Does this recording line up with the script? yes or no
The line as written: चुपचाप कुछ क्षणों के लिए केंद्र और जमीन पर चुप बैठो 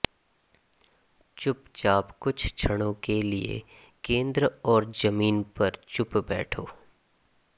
yes